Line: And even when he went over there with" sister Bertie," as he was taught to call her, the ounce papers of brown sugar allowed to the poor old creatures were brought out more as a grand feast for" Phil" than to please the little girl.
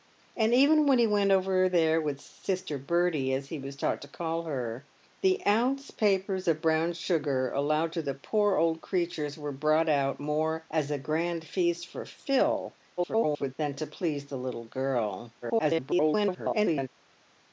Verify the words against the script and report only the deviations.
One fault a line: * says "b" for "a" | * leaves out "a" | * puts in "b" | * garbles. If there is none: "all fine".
* garbles
* garbles